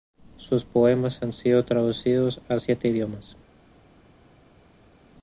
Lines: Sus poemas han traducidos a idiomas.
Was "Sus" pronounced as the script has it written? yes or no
yes